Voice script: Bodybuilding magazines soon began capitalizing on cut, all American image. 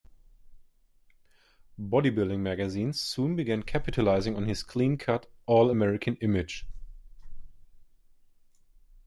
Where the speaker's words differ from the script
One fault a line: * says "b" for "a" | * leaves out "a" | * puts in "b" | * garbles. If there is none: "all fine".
* puts in "his clean"